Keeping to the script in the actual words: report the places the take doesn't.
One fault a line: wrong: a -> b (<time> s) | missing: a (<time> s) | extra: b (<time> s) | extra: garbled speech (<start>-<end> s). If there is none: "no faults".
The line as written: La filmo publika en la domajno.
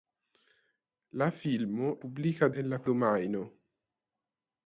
no faults